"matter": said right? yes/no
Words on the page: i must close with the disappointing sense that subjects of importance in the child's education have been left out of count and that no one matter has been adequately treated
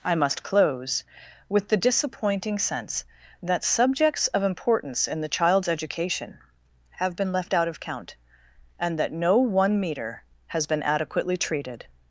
no